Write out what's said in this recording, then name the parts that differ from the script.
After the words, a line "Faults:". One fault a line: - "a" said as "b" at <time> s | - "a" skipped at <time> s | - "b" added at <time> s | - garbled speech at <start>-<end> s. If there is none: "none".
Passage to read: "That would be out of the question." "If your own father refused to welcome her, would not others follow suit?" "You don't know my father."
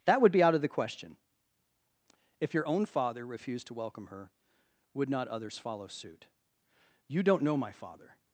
"That would be out of the question." "If your own father refused to welcome her, would not others follow suit?" "You don't know my father."
Faults:
none